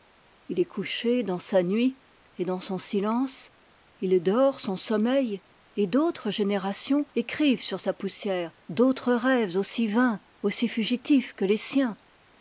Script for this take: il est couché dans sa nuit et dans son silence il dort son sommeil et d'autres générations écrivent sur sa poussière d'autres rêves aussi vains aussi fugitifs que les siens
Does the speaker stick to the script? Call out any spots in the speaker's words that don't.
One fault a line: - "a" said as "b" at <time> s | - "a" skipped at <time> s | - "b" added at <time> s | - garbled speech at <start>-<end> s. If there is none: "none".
none